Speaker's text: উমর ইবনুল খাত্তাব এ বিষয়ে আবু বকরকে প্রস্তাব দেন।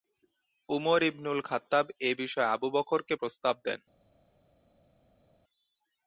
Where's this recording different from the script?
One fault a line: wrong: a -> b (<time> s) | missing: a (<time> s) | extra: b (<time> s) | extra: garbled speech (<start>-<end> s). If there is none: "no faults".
no faults